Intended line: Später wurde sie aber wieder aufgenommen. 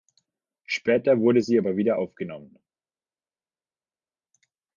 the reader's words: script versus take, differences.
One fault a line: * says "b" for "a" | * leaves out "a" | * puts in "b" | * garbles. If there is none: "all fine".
all fine